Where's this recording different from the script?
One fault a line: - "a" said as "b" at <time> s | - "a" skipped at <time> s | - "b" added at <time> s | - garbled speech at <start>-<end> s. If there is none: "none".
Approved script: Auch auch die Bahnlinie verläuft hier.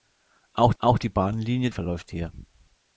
none